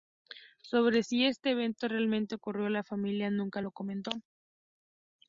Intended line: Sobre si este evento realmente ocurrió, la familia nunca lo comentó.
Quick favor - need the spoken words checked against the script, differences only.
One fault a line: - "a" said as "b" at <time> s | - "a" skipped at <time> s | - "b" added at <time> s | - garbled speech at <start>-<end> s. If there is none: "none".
none